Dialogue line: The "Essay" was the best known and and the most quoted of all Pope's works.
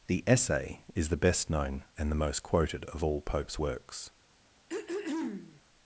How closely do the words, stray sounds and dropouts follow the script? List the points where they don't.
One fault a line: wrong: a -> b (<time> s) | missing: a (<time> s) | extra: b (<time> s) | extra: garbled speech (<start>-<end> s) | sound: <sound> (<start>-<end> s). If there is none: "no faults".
wrong: was -> is (0.9 s)
missing: and (2.1 s)
sound: throat clearing (4.7-5.6 s)